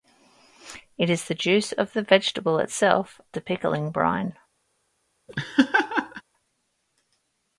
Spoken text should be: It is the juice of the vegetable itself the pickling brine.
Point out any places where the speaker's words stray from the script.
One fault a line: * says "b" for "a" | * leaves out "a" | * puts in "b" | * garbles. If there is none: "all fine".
all fine